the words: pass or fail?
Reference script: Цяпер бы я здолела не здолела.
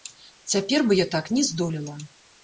fail